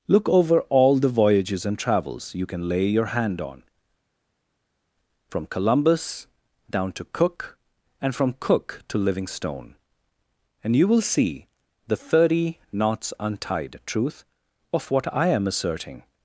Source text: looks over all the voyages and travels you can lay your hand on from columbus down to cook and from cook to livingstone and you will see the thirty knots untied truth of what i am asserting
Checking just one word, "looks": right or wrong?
wrong